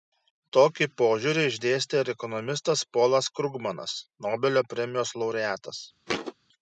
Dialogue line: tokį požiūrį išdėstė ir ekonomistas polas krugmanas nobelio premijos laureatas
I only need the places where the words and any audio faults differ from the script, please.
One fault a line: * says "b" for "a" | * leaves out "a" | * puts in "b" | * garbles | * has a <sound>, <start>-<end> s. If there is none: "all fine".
* has a thud, 6.1-6.3 s